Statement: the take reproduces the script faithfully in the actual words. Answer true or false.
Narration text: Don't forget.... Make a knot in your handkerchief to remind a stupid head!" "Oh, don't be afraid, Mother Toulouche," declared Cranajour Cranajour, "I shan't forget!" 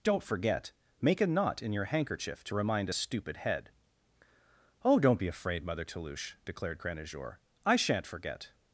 false